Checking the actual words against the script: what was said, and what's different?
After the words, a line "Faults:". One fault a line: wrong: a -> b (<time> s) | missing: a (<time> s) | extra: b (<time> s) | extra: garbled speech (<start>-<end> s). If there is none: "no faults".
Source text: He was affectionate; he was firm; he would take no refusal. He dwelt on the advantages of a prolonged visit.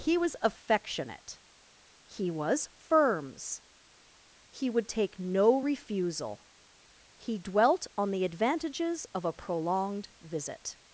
He was affectionate; he was firms; he would take no refusal. He dwelt on the advantages of a prolonged visit.
Faults:
wrong: firm -> firms (2.8 s)